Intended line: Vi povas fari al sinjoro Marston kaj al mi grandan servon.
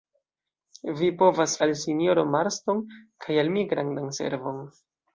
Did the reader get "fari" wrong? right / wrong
wrong